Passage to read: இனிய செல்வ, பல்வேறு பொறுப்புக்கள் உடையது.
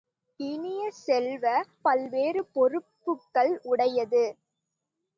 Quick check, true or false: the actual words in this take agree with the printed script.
true